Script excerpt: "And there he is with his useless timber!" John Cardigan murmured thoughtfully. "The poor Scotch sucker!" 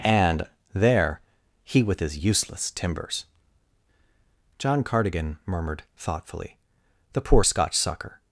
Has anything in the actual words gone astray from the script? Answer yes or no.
yes